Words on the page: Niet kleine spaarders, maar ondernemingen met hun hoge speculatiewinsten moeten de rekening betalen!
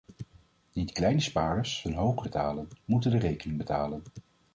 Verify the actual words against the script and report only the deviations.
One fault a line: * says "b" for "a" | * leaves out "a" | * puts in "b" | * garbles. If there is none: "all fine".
* leaves out "maar ondernemingen met"
* says "betalen" for "speculatiewinsten"